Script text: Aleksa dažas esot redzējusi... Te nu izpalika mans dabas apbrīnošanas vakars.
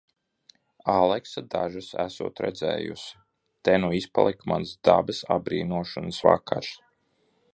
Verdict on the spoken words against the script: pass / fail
pass